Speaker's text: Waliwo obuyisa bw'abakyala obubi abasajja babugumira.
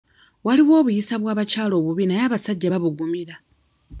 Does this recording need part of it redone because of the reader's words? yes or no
yes